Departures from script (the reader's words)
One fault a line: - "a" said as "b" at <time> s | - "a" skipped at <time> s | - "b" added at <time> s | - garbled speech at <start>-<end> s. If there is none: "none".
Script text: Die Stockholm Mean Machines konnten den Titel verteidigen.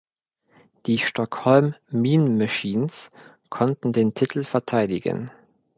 none